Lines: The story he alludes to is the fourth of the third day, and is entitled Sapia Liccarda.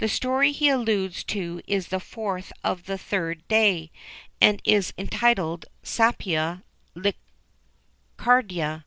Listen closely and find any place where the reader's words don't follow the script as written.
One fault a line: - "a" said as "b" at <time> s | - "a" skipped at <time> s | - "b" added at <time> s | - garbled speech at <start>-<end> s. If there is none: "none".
none